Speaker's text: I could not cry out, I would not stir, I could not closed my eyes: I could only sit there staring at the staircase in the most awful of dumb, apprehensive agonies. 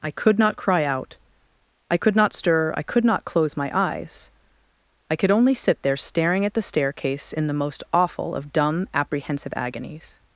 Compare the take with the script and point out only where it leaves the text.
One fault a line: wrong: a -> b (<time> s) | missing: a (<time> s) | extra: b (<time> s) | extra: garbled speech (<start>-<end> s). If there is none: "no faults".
wrong: would -> could (2.0 s)
wrong: closed -> close (3.2 s)